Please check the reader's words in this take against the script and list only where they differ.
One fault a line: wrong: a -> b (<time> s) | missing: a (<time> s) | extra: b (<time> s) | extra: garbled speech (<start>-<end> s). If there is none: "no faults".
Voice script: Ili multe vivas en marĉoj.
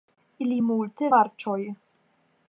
missing: vivas en (1.1 s)